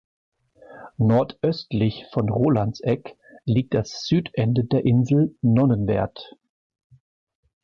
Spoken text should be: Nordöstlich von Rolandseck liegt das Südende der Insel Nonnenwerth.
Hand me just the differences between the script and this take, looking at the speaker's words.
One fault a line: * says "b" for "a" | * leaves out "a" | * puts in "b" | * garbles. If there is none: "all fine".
all fine